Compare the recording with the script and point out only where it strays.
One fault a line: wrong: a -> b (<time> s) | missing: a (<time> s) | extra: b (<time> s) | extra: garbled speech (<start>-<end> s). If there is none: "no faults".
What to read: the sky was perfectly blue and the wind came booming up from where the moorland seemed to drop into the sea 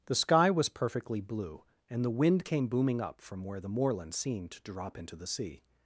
no faults